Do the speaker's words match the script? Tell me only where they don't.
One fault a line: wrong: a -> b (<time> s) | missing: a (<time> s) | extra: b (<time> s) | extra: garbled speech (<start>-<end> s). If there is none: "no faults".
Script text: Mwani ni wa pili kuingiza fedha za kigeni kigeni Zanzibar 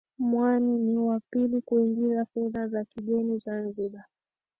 missing: kigeni (3.4 s)